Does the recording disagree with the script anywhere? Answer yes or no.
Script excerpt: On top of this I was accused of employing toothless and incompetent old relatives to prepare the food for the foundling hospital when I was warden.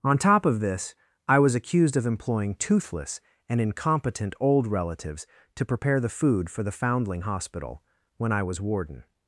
no